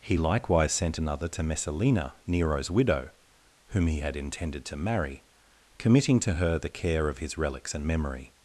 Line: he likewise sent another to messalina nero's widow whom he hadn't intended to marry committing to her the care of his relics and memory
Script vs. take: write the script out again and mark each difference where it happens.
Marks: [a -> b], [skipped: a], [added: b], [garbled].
he likewise sent another to messalina nero's widow whom he [hadn't -> had] intended to marry committing to her the care of his relics and memory